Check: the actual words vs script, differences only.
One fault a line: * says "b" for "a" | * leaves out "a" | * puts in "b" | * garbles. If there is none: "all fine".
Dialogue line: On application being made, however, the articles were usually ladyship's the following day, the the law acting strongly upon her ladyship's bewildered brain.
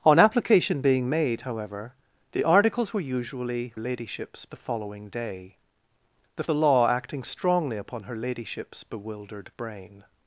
all fine